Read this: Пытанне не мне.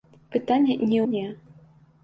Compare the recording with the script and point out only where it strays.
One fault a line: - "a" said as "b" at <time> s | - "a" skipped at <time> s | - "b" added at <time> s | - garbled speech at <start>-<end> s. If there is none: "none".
none